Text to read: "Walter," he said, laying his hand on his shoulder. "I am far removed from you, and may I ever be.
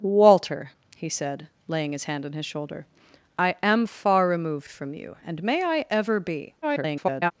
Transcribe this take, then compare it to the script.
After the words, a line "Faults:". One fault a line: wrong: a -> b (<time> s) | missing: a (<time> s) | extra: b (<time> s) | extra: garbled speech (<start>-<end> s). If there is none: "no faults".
"Walter," he said, laying his hand on his shoulder. "I am far removed from you, and may I ever be. [garbled]
Faults:
extra: garbled speech (6.6-7.3 s)